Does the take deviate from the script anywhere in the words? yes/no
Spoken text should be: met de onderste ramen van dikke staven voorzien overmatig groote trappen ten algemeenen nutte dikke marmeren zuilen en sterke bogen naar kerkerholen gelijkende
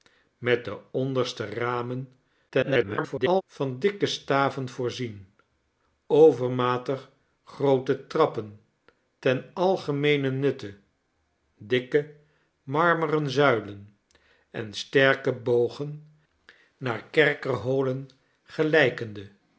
yes